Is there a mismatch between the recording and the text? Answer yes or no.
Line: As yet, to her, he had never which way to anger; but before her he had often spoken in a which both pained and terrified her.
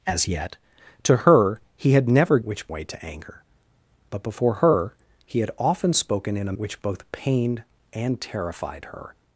no